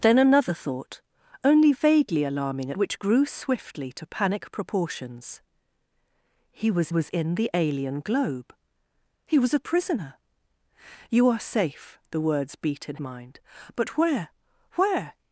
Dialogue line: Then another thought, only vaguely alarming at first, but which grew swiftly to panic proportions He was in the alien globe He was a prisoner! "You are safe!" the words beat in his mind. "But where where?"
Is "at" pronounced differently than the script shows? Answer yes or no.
yes